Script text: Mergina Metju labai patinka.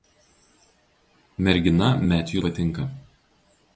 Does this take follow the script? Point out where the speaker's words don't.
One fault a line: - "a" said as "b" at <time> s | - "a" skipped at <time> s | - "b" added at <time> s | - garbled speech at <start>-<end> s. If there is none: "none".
- "labai" skipped at 2.4 s